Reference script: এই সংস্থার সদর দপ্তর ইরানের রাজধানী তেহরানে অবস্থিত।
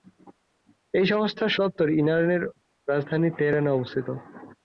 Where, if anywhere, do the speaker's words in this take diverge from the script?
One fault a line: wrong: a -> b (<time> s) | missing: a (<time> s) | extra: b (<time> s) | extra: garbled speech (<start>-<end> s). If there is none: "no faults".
missing: সদর (1.6 s)